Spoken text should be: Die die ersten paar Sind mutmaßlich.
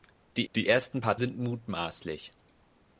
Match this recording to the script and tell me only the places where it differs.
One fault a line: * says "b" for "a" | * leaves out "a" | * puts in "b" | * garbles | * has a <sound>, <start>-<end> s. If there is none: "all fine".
all fine